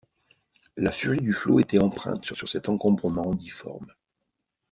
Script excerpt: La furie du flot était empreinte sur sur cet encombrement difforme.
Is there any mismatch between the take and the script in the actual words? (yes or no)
no